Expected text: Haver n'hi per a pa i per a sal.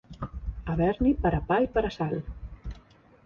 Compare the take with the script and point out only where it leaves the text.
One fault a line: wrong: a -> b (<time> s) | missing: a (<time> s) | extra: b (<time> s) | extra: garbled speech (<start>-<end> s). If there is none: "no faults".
no faults